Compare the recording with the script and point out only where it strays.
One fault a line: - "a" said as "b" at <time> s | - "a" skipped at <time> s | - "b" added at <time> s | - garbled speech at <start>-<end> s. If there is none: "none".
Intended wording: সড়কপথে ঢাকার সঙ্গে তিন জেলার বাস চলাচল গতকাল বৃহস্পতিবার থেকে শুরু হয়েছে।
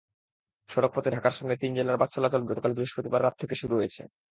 - "রাত" added at 3.2 s